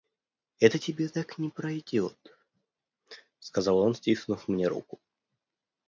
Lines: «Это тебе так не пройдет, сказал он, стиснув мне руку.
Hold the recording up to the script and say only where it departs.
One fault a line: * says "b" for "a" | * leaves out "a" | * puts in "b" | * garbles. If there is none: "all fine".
all fine